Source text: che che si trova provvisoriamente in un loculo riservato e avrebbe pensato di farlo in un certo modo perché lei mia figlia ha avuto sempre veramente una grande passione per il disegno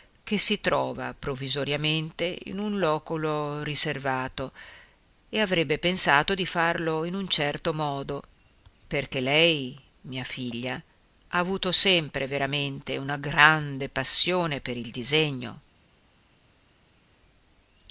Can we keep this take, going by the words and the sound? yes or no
no